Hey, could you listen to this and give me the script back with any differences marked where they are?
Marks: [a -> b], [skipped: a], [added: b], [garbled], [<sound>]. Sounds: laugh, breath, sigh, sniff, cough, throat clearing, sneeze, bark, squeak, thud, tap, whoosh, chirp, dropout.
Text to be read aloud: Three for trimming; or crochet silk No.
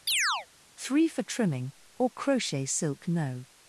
[chirp] Three for trimming; or crochet silk No.